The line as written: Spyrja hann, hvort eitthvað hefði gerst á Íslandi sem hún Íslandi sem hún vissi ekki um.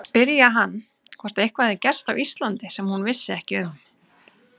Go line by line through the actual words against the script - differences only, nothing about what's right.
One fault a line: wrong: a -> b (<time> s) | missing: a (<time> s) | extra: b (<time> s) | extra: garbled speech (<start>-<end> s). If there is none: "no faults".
missing: Íslandi sem hún (3.0 s)